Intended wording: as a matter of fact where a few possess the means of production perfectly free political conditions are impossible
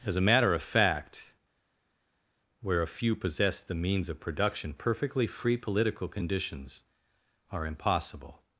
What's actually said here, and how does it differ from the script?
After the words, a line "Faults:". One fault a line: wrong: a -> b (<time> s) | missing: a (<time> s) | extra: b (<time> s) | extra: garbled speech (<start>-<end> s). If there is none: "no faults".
as a matter of fact where a few possess the means of production perfectly free political conditions are impossible
Faults:
no faults